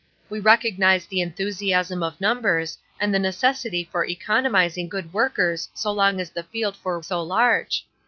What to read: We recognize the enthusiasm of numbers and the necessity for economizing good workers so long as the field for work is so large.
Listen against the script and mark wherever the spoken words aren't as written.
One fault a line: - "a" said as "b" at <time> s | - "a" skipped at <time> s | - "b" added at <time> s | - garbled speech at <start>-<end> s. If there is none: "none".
- "work is" skipped at 7.0 s